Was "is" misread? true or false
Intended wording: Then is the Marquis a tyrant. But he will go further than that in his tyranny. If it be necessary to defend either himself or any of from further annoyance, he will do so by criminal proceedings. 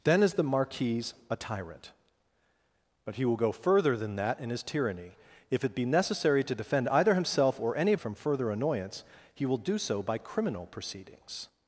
false